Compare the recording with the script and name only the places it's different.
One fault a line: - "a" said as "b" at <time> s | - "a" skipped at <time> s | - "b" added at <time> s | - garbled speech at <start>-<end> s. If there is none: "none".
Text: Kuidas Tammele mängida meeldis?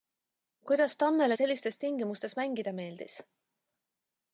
- "sellistes tingimustes" added at 1.3 s